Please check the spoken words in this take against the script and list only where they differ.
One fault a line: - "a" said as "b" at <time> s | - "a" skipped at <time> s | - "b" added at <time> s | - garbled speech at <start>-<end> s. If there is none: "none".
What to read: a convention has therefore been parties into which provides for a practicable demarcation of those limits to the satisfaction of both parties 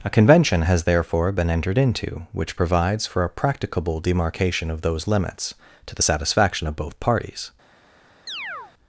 - "parties" said as "entered" at 1.5 s